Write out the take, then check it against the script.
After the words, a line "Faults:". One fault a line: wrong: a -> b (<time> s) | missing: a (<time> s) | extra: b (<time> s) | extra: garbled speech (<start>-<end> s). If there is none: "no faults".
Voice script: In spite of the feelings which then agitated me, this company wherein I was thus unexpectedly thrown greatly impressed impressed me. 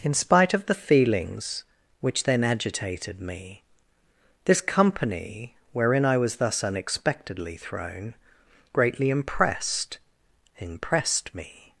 In spite of the feelings which then agitated me, this company wherein I was thus unexpectedly thrown greatly impressed impressed me.
Faults:
no faults